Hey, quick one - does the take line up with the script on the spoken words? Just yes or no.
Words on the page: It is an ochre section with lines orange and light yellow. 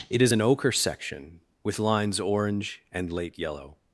no